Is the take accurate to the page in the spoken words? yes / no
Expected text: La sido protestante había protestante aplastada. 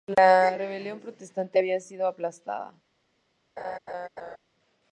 no